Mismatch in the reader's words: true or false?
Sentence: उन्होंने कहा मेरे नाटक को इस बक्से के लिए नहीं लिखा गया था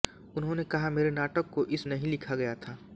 true